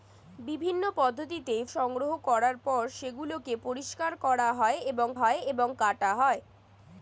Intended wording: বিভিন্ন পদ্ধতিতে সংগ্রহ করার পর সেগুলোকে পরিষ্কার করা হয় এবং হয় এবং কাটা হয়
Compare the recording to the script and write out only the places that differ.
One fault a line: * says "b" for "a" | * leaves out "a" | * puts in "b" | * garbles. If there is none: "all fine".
all fine